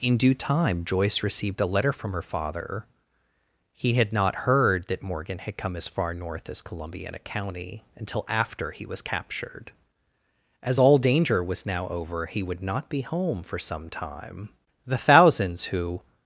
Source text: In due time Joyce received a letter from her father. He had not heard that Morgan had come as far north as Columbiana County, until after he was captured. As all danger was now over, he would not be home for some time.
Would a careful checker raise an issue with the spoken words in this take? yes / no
yes